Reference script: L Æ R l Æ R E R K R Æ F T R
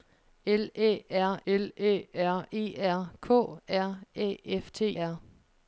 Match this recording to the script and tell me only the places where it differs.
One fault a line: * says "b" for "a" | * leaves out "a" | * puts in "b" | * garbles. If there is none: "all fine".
all fine